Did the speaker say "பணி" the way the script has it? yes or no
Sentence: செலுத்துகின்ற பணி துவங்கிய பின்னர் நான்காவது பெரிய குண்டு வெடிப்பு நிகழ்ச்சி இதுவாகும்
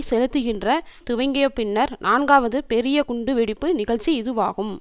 no